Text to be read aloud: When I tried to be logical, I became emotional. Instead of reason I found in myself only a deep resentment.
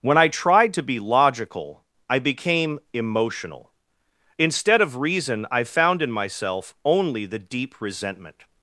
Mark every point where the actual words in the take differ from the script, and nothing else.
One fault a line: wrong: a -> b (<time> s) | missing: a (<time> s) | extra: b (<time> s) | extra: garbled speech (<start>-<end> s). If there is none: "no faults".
wrong: a -> the (7.2 s)